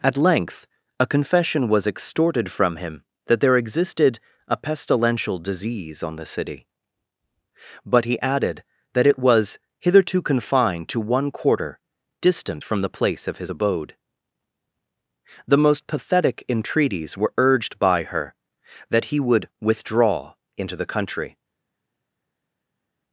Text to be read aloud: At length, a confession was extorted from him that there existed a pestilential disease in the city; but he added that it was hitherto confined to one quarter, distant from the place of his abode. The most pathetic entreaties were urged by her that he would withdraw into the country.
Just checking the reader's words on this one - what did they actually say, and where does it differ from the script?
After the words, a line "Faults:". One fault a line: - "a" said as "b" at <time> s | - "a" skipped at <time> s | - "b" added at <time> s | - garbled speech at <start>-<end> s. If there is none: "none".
At length, a confession was extorted from him that there existed a pestilential disease on the city; but he added that it was hitherto confined to one quarter, distant from the place of his abode. The most pathetic entreaties were urged by her that he would withdraw into the country.
Faults:
- "in" said as "on" at 6.0 s